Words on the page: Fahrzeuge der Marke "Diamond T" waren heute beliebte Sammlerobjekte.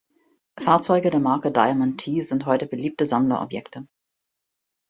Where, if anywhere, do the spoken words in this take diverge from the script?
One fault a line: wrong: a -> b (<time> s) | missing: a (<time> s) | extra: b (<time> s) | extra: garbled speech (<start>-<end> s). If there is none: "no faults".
wrong: waren -> sind (2.2 s)